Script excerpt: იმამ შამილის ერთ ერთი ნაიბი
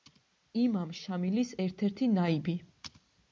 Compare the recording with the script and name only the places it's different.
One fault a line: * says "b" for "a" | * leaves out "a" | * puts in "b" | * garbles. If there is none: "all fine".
all fine